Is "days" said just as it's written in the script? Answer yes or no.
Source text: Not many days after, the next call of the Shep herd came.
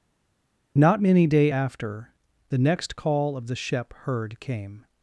no